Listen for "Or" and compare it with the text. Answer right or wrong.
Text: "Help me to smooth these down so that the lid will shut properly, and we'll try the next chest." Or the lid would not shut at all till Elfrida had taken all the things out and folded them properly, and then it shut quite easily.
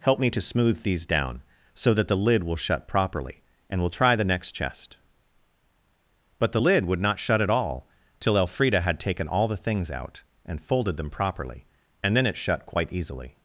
wrong